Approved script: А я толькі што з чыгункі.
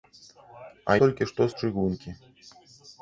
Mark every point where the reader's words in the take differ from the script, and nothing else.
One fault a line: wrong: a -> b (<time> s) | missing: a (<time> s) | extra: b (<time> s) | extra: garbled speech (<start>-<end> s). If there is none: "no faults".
missing: я (0.9 s)